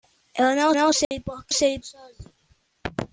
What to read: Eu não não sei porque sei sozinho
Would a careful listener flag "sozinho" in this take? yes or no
no